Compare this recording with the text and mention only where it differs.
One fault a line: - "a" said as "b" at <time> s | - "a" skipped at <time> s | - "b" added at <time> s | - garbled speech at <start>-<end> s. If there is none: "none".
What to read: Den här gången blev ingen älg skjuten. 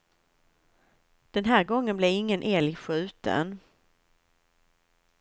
none